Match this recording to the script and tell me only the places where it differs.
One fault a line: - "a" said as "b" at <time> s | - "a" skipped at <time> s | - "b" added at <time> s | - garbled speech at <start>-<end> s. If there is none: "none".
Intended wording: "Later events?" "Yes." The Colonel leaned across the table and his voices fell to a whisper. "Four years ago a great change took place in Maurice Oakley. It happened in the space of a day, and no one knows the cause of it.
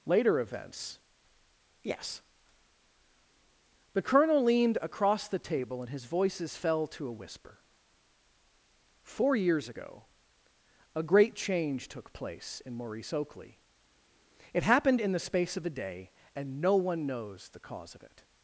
none